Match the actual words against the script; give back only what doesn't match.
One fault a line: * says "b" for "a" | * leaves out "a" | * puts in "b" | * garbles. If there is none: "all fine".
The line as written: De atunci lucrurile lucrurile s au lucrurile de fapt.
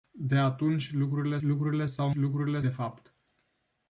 all fine